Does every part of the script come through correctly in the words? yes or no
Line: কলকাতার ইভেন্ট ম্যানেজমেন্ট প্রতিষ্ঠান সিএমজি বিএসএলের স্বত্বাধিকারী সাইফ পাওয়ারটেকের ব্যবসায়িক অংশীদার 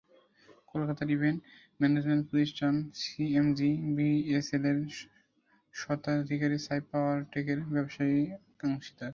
yes